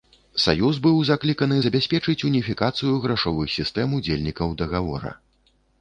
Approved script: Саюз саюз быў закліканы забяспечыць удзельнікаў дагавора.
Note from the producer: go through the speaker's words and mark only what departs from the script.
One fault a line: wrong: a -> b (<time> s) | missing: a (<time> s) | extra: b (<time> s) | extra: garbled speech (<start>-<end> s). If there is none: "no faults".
missing: саюз (0.8 s)
extra: уніфікацыю грашовых сістэм (2.3 s)